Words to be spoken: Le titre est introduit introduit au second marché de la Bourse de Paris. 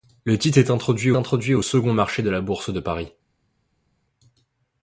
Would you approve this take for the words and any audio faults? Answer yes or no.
yes